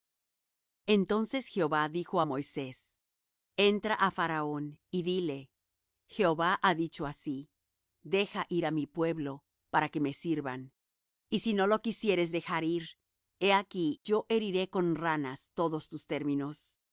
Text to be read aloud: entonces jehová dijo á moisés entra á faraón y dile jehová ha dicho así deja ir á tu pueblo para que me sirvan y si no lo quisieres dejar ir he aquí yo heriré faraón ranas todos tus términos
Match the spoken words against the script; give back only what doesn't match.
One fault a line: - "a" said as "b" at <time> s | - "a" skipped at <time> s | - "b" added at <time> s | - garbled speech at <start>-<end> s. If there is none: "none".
- "tu" said as "mi" at 8.7 s
- "faraón" said as "con" at 14.7 s